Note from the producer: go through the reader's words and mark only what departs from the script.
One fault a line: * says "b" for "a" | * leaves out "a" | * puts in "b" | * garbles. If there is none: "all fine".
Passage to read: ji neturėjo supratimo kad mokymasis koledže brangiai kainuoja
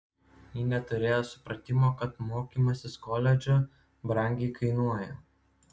all fine